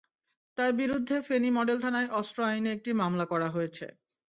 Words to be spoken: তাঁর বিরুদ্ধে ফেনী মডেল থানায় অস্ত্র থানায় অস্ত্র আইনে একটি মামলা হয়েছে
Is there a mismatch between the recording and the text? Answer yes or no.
yes